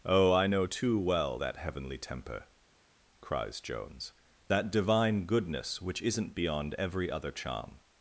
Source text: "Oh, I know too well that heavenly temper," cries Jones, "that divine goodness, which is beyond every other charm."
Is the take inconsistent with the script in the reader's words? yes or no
yes